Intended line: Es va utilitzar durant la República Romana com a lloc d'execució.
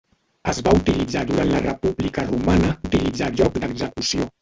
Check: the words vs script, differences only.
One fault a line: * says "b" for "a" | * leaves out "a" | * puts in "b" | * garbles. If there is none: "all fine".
* says "utilitzar" for "com"